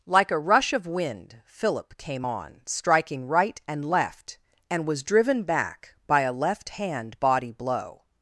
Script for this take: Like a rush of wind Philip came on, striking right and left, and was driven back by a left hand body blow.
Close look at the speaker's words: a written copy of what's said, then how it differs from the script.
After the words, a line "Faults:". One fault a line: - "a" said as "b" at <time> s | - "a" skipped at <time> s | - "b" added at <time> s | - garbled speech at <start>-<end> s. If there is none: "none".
Like a rush of wind Philip came on, striking right and left, and was driven back by a left hand body blow.
Faults:
none